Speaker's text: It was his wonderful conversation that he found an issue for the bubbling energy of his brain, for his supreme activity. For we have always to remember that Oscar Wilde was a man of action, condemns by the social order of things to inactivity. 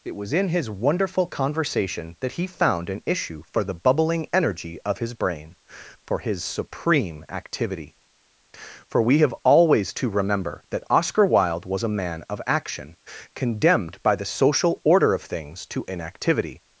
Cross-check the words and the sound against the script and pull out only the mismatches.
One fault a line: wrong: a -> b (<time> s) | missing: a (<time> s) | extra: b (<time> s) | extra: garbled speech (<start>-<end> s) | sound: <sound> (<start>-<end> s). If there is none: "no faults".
extra: in (0.3 s)
wrong: condemns -> condemned (13.3 s)